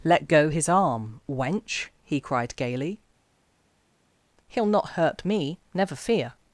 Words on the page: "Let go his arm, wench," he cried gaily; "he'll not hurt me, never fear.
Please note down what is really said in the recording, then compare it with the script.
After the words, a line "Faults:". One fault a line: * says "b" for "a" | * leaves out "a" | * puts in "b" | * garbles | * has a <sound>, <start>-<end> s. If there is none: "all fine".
"Let go his arm, wench," he cried gaily; "he'll not hurt me, never fear.
Faults:
all fine